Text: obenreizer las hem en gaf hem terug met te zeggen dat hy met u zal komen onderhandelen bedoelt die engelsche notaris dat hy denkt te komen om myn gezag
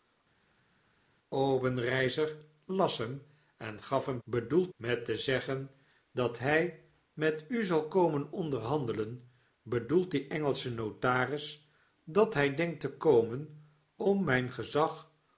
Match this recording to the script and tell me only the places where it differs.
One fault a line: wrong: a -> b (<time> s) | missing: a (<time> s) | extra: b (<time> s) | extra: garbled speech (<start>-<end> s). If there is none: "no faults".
wrong: terug -> bedoelt (4.2 s)